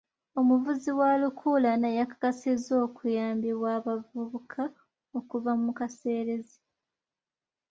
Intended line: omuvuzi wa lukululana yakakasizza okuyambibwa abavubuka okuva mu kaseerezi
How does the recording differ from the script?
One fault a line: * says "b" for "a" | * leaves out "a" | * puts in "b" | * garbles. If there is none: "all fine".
all fine